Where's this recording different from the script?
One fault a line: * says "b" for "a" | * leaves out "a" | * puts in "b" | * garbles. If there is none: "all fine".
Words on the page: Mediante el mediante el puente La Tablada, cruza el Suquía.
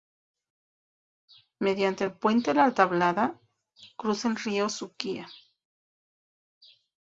* leaves out "mediante el"
* puts in "río"